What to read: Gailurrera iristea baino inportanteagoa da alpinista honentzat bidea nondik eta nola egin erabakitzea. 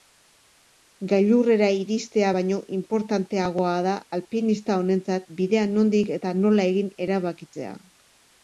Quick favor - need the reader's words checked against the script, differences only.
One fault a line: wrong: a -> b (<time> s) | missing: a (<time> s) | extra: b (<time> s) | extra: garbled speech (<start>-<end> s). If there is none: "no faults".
no faults